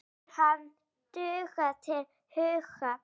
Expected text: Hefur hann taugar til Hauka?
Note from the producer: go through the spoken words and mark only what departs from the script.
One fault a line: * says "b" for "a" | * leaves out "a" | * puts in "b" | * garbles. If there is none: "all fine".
all fine